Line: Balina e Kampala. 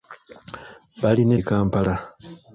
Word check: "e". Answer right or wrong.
right